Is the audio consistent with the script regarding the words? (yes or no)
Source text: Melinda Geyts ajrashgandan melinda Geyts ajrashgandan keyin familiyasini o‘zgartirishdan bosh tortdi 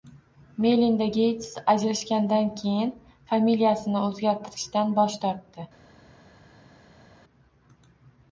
no